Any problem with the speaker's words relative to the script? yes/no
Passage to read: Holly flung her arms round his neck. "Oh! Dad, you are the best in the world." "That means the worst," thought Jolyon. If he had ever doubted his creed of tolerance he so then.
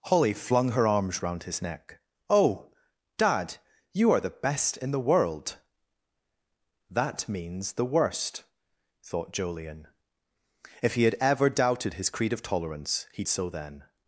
no